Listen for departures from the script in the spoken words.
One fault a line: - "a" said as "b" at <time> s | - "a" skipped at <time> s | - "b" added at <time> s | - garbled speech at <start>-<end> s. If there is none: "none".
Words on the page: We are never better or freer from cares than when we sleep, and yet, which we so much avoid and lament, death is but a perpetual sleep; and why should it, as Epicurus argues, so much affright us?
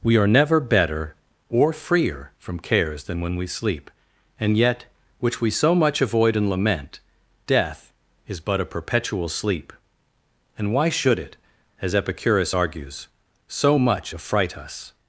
none